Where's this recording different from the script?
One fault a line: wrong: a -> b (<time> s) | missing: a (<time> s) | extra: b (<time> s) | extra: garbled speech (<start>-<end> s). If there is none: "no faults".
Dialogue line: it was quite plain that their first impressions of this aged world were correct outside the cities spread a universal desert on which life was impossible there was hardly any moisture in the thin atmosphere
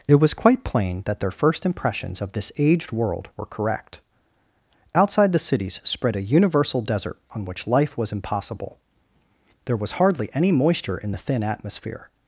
no faults